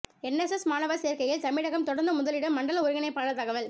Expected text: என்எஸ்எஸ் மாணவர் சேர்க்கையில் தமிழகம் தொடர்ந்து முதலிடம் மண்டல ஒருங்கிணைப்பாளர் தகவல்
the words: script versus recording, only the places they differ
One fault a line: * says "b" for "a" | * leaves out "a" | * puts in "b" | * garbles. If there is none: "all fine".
all fine